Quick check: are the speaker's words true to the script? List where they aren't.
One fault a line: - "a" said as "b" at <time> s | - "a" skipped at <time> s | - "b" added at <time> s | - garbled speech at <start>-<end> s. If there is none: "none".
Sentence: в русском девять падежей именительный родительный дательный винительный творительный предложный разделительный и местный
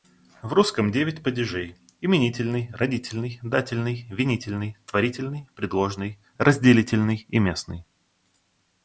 none